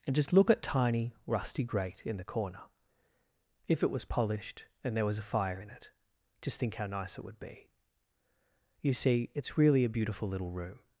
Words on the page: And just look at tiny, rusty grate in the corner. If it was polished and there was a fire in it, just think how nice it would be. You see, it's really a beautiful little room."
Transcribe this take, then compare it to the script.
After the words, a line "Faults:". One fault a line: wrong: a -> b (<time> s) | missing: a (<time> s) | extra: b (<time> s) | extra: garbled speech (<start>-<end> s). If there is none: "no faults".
And just look at tiny, rusty grate in the corner. If it was polished and there was a fire in it, just think how nice it would be. You see, it's really a beautiful little room."
Faults:
no faults